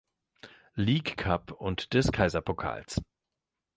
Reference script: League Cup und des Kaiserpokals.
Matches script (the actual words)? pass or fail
pass